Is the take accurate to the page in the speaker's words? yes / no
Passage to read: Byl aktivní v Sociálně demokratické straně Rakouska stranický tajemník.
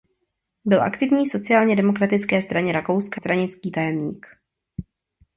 yes